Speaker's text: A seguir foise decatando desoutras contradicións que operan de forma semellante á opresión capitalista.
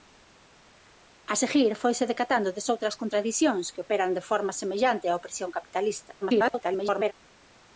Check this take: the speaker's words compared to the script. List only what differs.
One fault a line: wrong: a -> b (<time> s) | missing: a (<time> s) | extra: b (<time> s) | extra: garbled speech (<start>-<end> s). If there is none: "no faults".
extra: garbled speech (6.2-7.1 s)